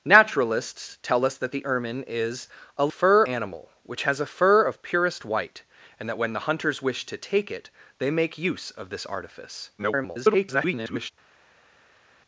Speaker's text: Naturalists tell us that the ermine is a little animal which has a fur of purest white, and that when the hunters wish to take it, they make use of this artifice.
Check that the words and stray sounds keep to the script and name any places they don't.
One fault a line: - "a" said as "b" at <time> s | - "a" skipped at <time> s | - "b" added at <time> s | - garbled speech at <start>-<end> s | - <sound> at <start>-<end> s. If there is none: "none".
- "little" said as "fur" at 2.9 s
- garbled speech at 9.8-11.1 s